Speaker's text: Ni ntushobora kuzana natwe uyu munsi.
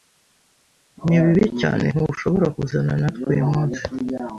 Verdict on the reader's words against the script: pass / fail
fail